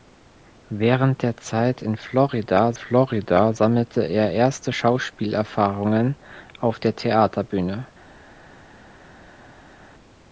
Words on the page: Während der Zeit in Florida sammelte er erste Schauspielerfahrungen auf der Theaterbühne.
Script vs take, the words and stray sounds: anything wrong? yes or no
yes